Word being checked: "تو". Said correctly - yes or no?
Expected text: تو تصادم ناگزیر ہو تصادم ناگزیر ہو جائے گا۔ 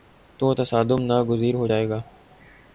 yes